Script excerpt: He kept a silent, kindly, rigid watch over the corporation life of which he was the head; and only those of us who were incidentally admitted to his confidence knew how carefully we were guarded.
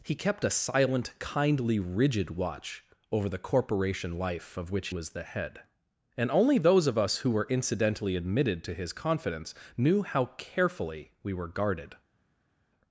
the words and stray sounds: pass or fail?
fail